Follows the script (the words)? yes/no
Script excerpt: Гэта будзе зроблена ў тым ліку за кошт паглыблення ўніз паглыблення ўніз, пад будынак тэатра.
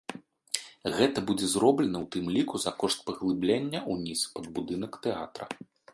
no